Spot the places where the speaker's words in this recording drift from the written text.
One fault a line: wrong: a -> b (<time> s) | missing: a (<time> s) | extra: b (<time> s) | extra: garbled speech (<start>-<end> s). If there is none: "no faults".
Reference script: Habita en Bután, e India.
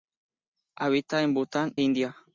missing: e (1.8 s)